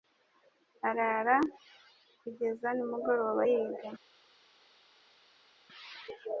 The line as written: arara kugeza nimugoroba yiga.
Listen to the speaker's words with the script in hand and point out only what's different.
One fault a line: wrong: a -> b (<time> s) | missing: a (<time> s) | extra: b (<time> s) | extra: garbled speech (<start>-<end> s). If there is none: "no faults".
no faults